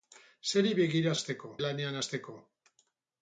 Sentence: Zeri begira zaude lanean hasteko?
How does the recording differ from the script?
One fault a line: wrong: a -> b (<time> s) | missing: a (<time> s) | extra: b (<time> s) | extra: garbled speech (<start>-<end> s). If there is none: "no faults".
wrong: zaude -> hasteko (1.2 s)